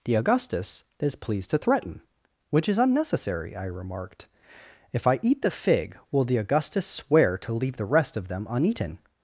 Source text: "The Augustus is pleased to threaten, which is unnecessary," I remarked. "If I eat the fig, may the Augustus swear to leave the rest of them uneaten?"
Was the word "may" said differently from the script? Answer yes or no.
yes